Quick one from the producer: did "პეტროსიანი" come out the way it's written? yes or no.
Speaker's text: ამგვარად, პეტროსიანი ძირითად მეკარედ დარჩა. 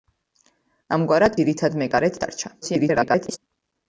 no